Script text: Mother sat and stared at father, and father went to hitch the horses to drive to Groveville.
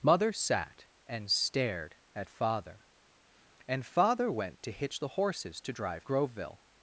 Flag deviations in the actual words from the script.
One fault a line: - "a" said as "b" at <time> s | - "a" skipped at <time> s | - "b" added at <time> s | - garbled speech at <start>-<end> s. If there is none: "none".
- "to" skipped at 6.0 s